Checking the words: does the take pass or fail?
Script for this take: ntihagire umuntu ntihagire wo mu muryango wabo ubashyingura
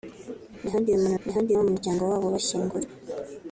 pass